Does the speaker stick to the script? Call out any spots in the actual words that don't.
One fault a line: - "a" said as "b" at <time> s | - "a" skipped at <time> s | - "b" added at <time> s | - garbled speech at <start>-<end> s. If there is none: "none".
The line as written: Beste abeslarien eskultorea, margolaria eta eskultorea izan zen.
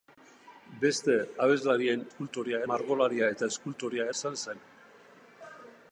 none